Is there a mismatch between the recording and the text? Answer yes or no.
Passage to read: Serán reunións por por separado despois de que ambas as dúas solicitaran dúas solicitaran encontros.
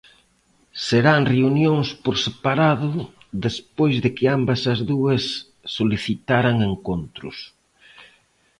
yes